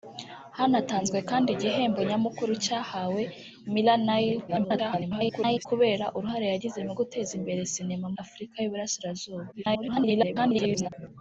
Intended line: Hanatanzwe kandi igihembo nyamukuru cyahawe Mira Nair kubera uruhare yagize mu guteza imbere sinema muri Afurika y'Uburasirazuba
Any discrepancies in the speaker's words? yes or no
yes